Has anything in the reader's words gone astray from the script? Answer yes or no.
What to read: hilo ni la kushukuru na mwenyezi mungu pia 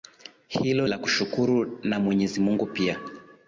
yes